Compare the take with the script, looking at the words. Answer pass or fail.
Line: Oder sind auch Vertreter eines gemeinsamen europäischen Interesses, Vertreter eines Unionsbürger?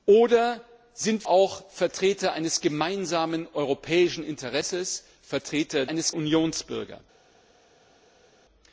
pass